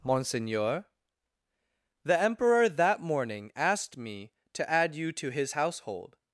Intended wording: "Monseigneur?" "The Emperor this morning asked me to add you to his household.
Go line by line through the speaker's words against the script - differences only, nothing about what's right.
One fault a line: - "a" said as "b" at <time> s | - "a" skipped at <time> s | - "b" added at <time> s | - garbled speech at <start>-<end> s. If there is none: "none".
- "this" said as "that" at 2.7 s